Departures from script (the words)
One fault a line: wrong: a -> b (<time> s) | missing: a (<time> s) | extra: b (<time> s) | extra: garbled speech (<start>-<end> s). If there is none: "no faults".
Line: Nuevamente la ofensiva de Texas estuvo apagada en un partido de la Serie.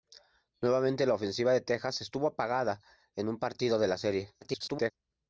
extra: garbled speech (4.4-4.9 s)